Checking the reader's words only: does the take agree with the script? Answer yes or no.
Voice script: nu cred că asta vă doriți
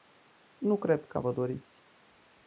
no